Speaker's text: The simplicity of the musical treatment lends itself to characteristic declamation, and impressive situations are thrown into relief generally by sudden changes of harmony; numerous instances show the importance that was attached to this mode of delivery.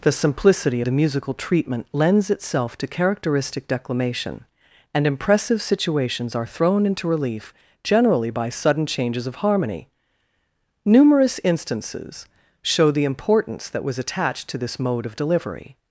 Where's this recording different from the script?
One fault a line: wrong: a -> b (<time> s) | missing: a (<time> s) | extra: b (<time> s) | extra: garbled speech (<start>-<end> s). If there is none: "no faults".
missing: of (0.8 s)